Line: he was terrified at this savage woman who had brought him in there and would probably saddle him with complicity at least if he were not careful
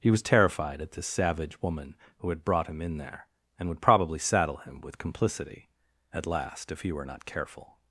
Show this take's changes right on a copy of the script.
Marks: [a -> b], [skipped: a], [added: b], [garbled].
he was terrified at this savage woman who had brought him in there and would probably saddle him with complicity at [least -> last] if he were not careful